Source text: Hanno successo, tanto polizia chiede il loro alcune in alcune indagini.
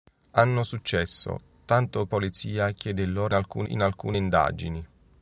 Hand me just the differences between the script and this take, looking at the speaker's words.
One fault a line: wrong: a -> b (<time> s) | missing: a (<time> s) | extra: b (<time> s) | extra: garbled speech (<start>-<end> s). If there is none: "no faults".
no faults